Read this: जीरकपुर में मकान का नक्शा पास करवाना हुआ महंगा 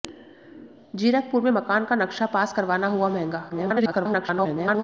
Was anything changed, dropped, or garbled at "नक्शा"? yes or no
no